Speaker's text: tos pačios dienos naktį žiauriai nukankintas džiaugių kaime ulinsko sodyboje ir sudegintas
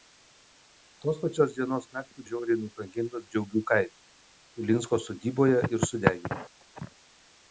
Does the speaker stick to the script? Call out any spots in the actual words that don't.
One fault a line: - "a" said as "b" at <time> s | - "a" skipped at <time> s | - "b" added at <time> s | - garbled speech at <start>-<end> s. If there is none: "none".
none